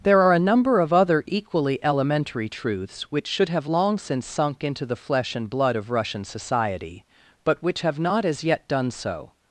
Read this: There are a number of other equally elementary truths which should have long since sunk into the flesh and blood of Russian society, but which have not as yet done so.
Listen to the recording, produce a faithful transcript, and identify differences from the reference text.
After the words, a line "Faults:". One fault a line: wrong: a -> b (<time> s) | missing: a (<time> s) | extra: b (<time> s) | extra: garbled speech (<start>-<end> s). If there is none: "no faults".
There are a number of other equally elementary truths which should have long since sunk into the flesh and blood of Russian society, but which have not as yet done so.
Faults:
no faults